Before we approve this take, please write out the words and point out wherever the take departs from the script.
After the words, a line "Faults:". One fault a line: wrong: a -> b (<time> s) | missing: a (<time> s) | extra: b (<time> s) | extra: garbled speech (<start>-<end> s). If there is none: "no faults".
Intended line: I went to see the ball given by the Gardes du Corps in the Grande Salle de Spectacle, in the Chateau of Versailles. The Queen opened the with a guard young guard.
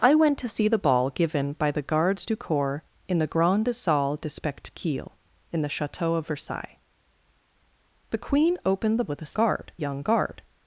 I went to see the ball given by the Gardes du Corps in the Grande Salle de Spectacle, in the Chateau of Versailles. The Queen opened the with a guard young guard.
Faults:
no faults